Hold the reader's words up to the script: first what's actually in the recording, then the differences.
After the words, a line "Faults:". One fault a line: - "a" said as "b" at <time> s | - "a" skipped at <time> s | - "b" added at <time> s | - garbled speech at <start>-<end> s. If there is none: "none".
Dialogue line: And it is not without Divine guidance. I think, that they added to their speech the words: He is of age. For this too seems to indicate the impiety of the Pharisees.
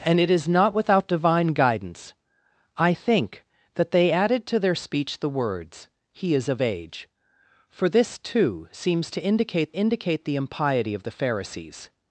And it is not without Divine guidance. I think, that they added to their speech the words: He is of age. For this too seems to indicate indicate the impiety of the Pharisees.
Faults:
- "indicate" added at 9.8 s